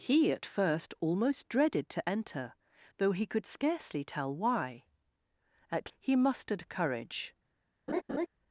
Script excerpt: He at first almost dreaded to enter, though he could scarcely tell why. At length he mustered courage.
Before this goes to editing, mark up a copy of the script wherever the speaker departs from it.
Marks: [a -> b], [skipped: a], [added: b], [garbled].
He at first almost dreaded to enter, though he could scarcely tell why. At [skipped: length] he mustered courage.